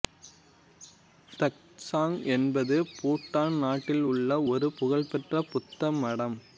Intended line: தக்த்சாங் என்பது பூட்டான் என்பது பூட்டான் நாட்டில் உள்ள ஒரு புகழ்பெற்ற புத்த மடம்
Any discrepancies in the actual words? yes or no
yes